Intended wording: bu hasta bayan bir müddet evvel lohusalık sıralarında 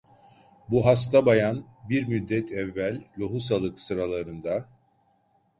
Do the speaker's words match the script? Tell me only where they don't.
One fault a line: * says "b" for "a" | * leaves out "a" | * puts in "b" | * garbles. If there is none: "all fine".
all fine